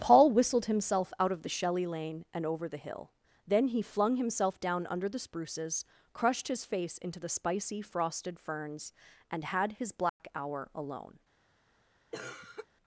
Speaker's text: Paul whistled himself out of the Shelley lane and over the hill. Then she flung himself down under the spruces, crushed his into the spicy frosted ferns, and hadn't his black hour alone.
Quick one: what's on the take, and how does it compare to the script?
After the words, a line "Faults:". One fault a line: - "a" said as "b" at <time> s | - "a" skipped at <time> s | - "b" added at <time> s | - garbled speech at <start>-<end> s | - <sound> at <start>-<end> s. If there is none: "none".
Paul whistled himself out of the Shelley lane and over the hill. Then he flung himself down under the spruces, crushed his face into the spicy frosted ferns, and had his black hour alone.
Faults:
- "she" said as "he" at 3.7 s
- "face" added at 6.7 s
- "hadn't" said as "had" at 9.4 s
- dropout at 10.1-10.2 s
- cough at 12.1-12.7 s